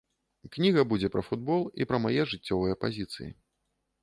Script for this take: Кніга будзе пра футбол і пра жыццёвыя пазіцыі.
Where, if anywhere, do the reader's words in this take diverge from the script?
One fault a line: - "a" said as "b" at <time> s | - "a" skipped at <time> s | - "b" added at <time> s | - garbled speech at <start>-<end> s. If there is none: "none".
- "мае" added at 2.1 s